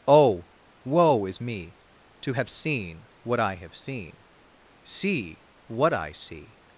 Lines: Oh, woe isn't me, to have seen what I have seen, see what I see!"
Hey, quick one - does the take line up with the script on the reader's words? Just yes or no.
no